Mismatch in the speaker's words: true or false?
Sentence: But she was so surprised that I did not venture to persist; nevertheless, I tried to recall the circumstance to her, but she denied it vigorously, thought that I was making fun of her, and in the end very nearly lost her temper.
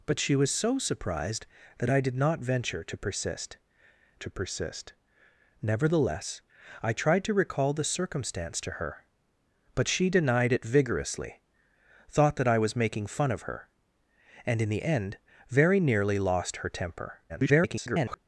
true